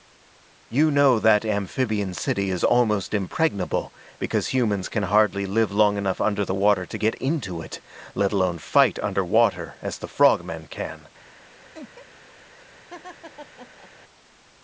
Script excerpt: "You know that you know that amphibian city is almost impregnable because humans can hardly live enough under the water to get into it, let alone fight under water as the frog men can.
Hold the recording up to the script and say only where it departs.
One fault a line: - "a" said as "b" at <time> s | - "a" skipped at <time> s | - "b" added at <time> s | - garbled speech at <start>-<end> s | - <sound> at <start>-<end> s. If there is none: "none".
- "you know that" skipped at 1.4 s
- "long" added at 5.7 s
- laugh at 11.7-12.1 s
- laugh at 12.9-13.9 s